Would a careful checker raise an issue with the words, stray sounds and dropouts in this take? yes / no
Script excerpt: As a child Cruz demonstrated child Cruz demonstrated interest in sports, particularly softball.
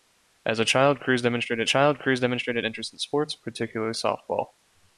no